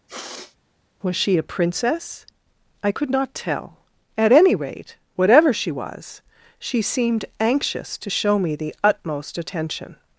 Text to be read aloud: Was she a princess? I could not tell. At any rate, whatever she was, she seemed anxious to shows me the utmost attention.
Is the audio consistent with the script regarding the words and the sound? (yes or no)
no